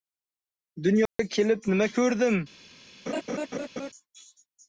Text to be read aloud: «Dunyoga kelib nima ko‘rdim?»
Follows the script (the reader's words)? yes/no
yes